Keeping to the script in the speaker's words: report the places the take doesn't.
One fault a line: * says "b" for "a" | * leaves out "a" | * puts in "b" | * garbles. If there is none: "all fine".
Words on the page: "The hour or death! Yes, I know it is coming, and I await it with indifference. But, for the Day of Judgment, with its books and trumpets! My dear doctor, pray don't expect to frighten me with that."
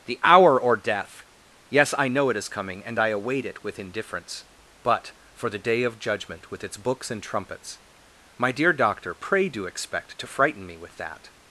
* says "do" for "don't"